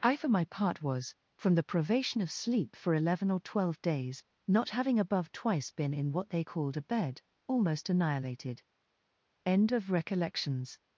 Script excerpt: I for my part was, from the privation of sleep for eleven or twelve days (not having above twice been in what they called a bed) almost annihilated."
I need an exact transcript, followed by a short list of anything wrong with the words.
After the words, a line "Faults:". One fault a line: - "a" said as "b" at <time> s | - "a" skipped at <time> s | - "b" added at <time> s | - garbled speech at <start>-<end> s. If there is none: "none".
I for my part was, from the privation of sleep for eleven or twelve days (not having above twice been in what they called a bed) almost annihilated." END OF RECOLLECTIONS
Faults:
- "END OF RECOLLECTIONS" added at 9.4 s